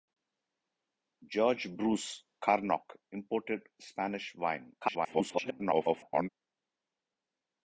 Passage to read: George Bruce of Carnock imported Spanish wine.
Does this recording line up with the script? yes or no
no